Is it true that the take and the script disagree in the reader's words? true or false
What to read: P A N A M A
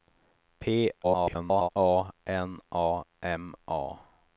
true